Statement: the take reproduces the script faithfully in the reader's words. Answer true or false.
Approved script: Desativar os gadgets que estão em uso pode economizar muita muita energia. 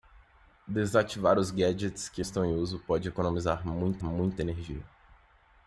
true